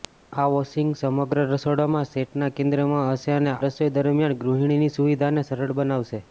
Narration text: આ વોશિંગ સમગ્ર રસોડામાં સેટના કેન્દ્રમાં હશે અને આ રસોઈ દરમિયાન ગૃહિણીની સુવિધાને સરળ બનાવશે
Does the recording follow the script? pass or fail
fail